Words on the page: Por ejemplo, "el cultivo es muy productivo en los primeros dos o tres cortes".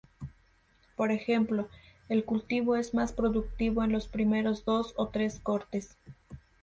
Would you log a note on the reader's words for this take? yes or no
yes